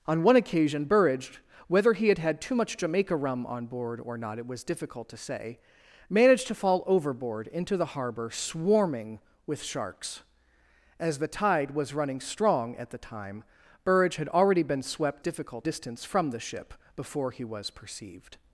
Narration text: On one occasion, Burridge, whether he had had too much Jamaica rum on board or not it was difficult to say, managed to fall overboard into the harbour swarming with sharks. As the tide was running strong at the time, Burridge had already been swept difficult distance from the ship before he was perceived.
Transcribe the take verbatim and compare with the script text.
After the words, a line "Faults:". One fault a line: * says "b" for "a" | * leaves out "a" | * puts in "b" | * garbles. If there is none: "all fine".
On one occasion, Burridge, whether he had had too much Jamaica rum on board or not it was difficult to say, managed to fall overboard into the harbour swarming with sharks. As the tide was running strong at the time, Burridge had already been swept difficult distance from the ship before he was perceived.
Faults:
all fine